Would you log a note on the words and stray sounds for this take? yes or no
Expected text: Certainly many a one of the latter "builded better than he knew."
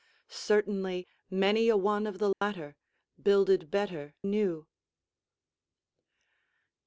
yes